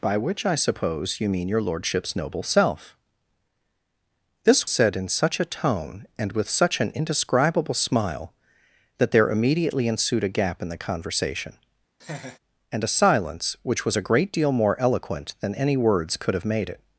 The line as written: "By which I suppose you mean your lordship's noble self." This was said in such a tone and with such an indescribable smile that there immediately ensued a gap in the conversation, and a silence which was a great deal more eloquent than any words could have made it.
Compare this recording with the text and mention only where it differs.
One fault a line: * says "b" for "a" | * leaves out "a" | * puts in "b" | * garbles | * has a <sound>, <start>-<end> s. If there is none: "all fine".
* leaves out "was"
* has a laugh, 12.0-12.4 s